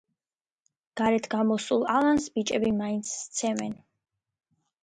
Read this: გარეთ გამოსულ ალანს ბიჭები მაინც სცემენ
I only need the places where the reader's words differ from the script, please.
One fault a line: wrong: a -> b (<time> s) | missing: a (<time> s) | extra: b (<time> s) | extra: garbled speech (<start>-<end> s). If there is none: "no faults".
no faults